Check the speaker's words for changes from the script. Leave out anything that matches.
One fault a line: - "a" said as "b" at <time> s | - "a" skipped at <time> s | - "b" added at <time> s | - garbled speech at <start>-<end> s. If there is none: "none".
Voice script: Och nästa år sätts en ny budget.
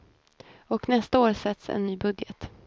none